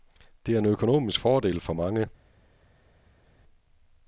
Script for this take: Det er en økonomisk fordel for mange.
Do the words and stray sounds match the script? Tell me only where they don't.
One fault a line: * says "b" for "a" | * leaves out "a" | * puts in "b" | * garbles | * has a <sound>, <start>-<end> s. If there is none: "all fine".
all fine